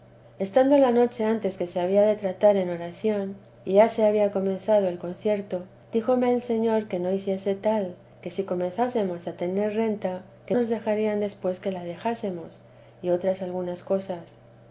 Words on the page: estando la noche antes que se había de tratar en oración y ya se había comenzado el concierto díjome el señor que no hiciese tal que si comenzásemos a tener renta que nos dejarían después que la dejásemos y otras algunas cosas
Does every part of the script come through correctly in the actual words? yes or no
yes